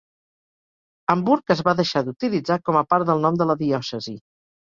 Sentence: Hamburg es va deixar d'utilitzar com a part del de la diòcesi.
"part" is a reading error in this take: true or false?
false